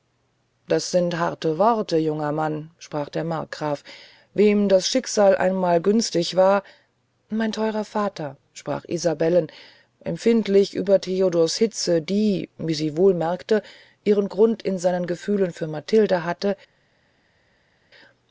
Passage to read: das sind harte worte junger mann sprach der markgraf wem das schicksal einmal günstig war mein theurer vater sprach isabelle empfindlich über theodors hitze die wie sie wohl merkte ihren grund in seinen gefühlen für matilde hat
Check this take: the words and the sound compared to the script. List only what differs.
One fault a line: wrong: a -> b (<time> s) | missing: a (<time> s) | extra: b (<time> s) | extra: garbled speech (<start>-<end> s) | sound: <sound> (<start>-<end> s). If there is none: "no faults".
wrong: hat -> hatte (16.2 s)